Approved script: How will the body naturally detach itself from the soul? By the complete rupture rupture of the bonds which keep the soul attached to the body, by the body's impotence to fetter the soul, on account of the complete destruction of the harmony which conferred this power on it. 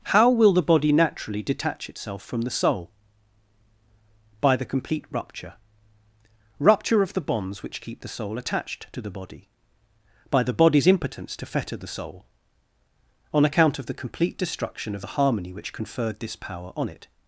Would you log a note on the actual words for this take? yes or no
no